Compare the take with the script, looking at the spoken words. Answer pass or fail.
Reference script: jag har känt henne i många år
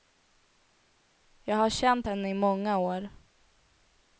pass